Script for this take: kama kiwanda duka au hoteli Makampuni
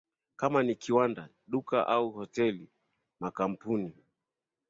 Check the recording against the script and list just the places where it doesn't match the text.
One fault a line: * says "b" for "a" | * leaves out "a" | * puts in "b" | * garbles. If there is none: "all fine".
* puts in "ni"